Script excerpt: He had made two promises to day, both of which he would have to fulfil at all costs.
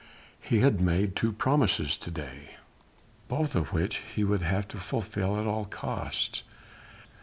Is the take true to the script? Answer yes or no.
yes